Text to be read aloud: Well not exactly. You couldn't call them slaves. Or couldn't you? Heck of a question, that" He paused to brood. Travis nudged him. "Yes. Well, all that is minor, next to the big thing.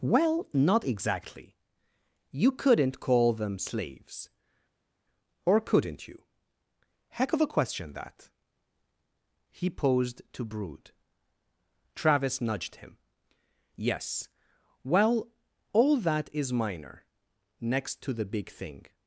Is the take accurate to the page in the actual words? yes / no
yes